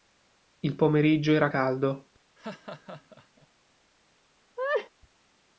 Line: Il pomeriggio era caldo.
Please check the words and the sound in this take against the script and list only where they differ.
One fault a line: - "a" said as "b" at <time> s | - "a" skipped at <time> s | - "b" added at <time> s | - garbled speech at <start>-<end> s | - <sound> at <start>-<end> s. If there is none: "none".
- laugh at 2.4-3.5 s
- laugh at 4.6-4.9 s